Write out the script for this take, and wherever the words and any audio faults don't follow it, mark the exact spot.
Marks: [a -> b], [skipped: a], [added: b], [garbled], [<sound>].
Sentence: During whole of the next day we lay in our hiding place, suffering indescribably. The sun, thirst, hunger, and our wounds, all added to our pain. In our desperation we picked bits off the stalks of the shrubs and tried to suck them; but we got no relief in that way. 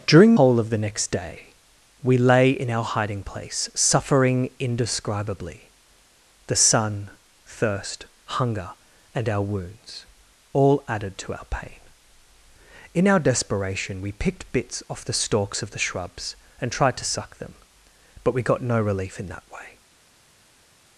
During whole of the next day we lay in our hiding place, suffering indescribably. The sun, thirst, hunger, and our wounds, all added to our pain. In our desperation we picked bits off the stalks of the shrubs and tried to suck them; but we got no relief in that way.